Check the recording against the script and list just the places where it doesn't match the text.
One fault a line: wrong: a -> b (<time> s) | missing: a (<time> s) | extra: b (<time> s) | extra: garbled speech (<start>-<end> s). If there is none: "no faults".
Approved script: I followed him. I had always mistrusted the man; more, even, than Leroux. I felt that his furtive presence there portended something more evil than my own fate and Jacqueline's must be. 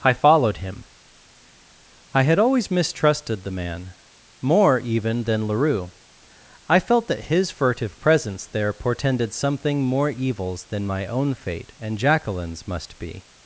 wrong: evil -> evils (10.1 s)